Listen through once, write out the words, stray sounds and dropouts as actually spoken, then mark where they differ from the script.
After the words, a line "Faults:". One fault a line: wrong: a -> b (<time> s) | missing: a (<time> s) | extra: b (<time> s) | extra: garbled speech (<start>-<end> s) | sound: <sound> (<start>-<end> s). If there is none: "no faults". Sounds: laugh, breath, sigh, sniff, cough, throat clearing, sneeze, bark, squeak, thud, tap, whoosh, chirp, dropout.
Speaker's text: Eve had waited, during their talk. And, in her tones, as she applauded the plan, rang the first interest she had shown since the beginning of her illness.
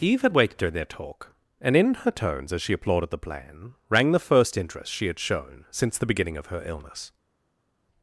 Eve had waited, during their talk. And, in her tones, as she applauded the plan, rang the first interest she had shown since the beginning of her illness.
Faults:
no faults